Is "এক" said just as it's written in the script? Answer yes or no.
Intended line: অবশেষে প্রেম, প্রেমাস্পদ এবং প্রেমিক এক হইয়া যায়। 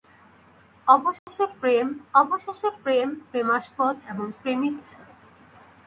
no